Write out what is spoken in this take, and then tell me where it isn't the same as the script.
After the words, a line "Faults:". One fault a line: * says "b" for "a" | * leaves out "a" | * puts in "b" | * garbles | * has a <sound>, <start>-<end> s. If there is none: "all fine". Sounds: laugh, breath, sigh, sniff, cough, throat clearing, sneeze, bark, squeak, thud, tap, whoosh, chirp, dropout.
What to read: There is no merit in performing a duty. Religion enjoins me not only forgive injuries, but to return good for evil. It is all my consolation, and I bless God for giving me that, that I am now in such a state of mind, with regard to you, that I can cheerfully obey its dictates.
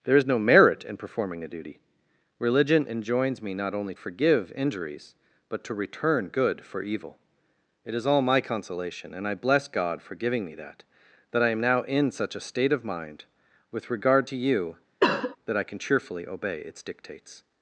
There is no merit in performing a duty. Religion enjoins me not only forgive injuries, but to return good for evil. It is all my consolation, and I bless God for giving me that, that I am now in such a state of mind, with regard to you, that I can cheerfully obey its dictates.
Faults:
* has a cough, 15.0-15.4 s